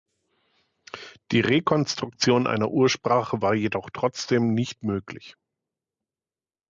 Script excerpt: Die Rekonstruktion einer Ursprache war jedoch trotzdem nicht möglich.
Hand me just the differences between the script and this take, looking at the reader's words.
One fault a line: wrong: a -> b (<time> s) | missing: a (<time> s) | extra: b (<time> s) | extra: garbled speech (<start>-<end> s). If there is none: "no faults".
no faults